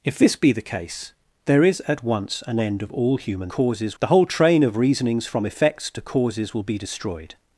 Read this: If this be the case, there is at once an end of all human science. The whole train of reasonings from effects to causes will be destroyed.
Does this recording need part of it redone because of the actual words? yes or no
yes